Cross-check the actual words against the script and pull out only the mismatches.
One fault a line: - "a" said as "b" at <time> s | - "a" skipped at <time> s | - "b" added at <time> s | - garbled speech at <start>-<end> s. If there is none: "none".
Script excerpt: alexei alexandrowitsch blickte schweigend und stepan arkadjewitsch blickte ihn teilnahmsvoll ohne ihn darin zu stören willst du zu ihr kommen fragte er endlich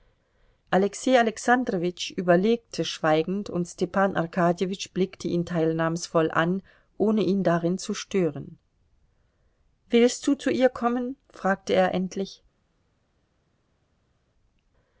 - "blickte" said as "überlegte" at 2.2 s
- "an" added at 6.3 s